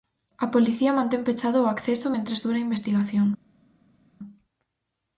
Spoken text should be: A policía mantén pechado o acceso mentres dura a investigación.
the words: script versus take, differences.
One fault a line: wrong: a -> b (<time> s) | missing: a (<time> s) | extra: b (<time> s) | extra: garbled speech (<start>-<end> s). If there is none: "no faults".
no faults